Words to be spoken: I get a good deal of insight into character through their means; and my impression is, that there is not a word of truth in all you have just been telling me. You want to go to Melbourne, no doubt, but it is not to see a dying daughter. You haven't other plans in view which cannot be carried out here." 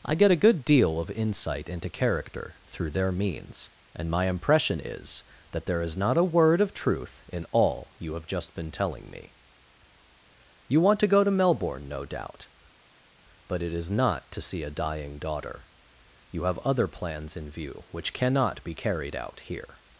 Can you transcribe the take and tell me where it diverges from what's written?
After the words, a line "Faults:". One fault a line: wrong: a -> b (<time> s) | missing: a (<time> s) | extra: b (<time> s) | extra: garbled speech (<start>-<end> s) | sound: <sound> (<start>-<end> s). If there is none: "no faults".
I get a good deal of insight into character through their means; and my impression is, that there is not a word of truth in all you have just been telling me. You want to go to Melbourne, no doubt, but it is not to see a dying daughter. You have other plans in view which cannot be carried out here."
Faults:
wrong: haven't -> have (16.4 s)